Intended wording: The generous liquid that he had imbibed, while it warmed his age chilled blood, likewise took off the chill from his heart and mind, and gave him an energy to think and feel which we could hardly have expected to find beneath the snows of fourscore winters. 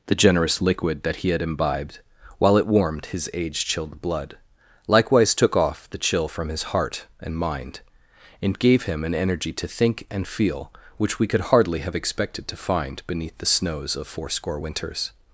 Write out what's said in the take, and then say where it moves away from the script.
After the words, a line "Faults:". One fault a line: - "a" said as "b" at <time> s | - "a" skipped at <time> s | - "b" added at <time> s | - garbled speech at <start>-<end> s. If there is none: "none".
The generous liquid that he had imbibed, while it warmed his age chilled blood, likewise took off the chill from his heart and mind, and gave him an energy to think and feel which we could hardly have expected to find beneath the snows of fourscore winters.
Faults:
none